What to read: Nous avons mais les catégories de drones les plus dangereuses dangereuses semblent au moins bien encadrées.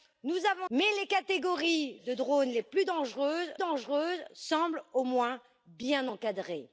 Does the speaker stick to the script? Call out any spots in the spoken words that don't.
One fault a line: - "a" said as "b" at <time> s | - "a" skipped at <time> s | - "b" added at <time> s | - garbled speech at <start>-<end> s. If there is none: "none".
none